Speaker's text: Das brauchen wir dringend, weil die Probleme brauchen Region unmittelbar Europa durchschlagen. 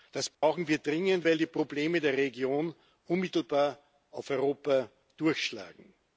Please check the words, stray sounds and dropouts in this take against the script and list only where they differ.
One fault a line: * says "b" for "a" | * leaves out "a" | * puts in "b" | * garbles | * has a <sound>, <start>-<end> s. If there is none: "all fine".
* has a dropout, 0.3-0.4 s
* says "der" for "brauchen"
* puts in "auf"